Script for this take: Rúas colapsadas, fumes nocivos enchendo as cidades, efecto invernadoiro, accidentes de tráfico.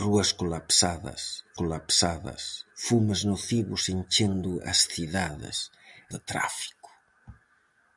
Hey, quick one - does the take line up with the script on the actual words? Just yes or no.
no